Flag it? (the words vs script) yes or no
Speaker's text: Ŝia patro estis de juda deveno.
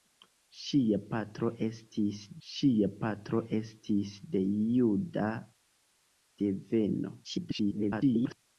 yes